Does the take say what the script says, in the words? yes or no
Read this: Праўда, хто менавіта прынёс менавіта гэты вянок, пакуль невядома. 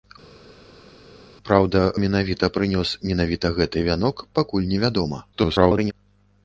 no